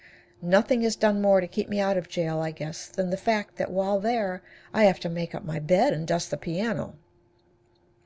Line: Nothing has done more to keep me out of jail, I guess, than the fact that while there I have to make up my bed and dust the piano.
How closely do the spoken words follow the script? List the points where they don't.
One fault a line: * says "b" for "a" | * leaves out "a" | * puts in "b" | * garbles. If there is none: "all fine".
all fine